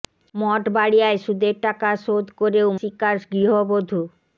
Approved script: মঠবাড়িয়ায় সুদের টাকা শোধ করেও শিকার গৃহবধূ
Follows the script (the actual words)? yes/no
yes